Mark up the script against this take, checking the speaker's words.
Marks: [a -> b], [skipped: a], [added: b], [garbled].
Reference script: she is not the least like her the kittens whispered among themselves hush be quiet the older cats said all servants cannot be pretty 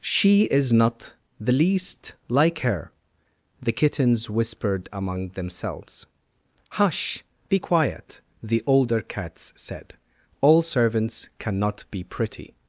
she is not the least like her the kittens whispered among themselves hush be quiet the older cats said all servants cannot be pretty